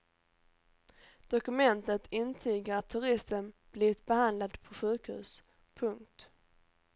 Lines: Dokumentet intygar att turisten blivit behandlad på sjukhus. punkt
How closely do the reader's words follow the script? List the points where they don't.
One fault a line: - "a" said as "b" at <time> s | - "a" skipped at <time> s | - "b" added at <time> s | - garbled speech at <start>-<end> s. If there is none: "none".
none